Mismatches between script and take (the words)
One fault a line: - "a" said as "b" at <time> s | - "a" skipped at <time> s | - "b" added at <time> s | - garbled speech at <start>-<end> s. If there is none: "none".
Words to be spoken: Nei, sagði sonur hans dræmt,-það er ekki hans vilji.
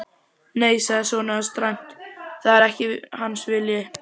none